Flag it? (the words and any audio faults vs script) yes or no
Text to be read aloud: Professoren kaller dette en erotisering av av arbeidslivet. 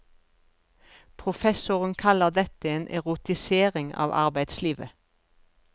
yes